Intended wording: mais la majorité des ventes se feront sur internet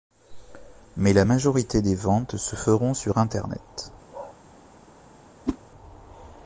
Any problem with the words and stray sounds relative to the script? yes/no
yes